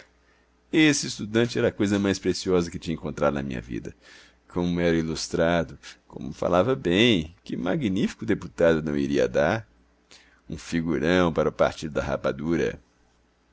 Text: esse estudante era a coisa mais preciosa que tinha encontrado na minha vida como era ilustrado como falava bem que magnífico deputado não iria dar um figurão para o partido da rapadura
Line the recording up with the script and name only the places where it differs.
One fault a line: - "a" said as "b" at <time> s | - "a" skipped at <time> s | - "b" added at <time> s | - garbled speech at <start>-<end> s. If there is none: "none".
none